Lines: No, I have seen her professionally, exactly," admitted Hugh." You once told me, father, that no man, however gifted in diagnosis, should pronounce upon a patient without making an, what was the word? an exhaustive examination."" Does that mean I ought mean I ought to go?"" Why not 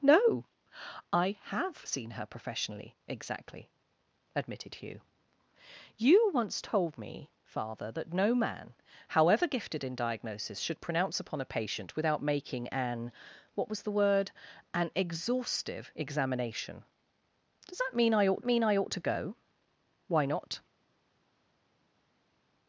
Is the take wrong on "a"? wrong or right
right